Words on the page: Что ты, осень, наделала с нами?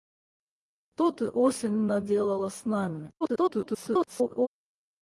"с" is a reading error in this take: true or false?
false